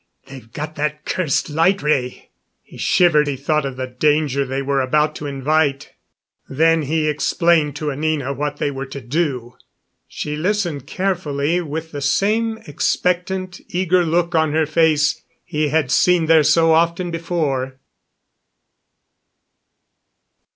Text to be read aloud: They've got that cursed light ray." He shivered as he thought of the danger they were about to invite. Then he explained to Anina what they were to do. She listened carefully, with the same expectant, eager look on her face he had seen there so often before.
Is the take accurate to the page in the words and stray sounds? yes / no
no